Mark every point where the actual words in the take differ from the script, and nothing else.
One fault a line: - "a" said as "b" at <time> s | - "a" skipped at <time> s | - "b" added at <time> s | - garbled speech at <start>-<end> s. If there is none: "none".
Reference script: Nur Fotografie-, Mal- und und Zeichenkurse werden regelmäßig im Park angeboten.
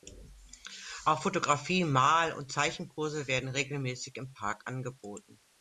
- "Nur" said as "Auch" at 1.1 s
- "und" skipped at 2.5 s